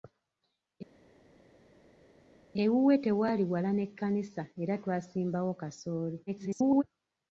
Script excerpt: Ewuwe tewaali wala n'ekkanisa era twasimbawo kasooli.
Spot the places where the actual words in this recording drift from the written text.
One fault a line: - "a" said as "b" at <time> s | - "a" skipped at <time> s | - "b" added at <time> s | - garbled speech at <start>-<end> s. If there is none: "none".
- garbled speech at 6.3-6.8 s